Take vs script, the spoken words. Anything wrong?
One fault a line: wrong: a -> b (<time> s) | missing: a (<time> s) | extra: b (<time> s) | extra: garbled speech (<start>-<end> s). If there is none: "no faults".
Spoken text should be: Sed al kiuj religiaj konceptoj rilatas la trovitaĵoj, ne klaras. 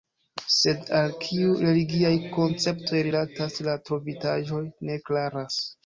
no faults